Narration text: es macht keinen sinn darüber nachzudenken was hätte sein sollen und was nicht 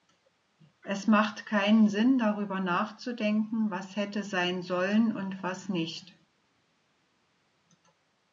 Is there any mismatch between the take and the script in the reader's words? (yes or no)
no